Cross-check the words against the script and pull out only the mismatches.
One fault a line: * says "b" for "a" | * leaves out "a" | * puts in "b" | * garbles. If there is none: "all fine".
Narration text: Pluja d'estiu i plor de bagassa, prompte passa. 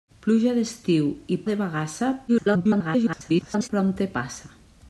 * leaves out "plor"
* garbles